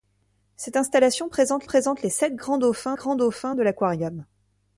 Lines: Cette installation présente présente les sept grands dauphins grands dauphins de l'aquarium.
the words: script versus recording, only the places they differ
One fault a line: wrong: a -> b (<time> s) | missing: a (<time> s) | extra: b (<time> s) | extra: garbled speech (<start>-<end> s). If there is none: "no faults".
no faults